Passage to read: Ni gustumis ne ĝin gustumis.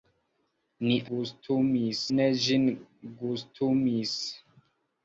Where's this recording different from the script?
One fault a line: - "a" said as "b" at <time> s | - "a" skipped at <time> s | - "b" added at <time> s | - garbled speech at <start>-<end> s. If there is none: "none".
none